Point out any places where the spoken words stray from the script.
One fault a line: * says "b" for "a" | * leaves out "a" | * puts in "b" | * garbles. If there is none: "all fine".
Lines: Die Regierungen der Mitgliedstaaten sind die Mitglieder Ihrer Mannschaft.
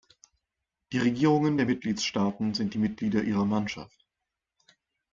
all fine